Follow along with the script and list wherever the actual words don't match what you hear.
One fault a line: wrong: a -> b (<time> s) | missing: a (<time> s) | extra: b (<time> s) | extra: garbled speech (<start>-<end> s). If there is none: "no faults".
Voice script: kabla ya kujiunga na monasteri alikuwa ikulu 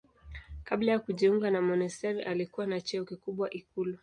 extra: na cheo kikubwa (2.7 s)